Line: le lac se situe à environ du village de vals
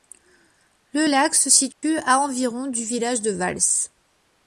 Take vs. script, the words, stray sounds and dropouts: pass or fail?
fail